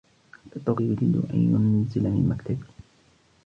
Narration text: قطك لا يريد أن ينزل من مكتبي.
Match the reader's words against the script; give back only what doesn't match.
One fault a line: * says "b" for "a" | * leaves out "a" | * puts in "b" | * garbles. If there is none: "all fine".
* leaves out "لا"